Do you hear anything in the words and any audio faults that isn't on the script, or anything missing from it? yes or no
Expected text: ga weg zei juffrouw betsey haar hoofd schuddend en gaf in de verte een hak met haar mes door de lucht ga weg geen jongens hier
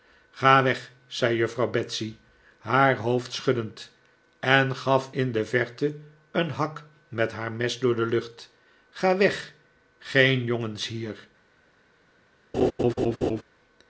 yes